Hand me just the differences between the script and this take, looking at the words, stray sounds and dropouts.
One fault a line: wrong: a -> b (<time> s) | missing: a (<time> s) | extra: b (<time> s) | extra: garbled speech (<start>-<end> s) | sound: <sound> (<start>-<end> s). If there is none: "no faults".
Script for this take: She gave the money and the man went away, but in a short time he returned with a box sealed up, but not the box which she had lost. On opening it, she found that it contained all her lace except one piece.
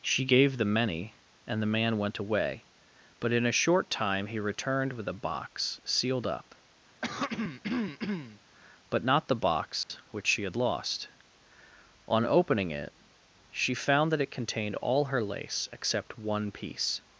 wrong: money -> many (0.7 s)
sound: throat clearing (7.0-8.4 s)
sound: dropout (9.8-9.9 s)